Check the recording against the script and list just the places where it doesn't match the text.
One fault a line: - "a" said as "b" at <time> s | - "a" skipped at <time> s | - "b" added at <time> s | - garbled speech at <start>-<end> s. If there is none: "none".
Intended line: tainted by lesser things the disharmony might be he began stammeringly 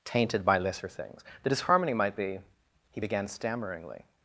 none